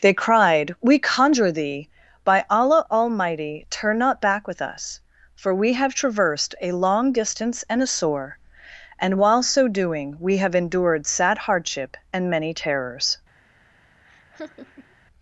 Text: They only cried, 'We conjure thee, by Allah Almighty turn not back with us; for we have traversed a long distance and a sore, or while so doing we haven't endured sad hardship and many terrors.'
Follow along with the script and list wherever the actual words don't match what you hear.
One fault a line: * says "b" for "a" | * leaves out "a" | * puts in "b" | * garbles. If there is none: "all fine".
* leaves out "only"
* says "and" for "or"
* says "have" for "haven't"